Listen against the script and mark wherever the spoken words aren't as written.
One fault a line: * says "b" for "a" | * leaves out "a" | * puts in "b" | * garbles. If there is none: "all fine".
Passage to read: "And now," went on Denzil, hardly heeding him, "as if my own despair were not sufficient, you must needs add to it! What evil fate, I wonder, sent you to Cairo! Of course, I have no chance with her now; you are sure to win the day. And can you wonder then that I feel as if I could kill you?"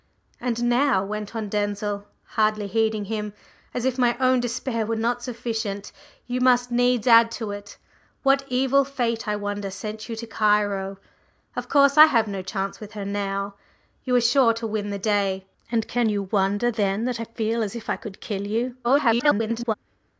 * garbles